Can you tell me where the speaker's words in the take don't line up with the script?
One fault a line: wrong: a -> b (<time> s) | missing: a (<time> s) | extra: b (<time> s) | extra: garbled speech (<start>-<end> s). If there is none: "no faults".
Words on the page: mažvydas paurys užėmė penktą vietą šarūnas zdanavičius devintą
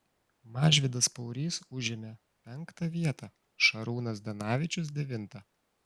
no faults